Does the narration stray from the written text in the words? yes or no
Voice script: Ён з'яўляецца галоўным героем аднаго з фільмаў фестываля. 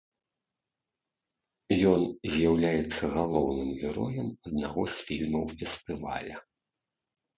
no